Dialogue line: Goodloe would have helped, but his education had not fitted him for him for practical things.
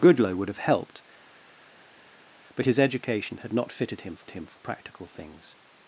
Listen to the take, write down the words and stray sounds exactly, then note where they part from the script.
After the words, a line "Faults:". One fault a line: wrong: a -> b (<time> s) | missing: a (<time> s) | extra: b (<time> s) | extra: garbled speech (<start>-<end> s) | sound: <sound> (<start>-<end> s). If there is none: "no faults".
Goodloe would have helped, but his education had not fitted him for him for practical things.
Faults:
no faults